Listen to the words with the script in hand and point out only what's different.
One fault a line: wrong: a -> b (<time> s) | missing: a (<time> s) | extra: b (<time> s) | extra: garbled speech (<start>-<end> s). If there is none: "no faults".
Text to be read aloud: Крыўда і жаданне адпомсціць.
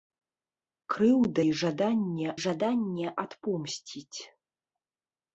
extra: жаданне (2.4 s)